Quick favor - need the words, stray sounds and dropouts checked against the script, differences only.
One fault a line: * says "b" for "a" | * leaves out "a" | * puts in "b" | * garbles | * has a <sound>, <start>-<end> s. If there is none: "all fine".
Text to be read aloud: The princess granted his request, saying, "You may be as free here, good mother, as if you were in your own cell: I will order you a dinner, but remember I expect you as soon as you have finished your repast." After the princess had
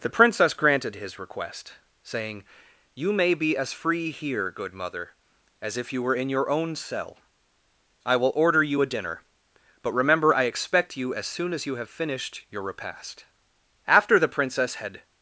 all fine